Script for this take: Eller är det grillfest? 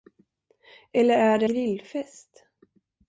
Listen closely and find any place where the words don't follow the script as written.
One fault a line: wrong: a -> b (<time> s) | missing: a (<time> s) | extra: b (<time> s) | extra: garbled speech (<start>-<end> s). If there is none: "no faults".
no faults